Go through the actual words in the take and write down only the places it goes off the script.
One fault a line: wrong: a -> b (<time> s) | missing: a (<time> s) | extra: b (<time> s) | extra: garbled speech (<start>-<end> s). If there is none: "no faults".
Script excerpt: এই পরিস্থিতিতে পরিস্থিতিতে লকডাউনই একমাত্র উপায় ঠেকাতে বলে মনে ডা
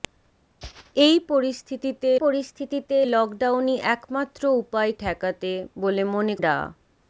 no faults